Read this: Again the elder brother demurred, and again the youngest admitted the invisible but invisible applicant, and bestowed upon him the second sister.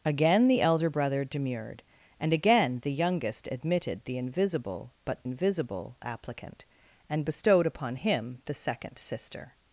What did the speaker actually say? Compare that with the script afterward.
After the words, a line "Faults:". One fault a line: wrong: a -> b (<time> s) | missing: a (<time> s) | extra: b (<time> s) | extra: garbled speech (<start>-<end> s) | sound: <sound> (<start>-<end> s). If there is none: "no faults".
Again the elder brother demurred, and again the youngest admitted the invisible but invisible applicant, and bestowed upon him the second sister.
Faults:
no faults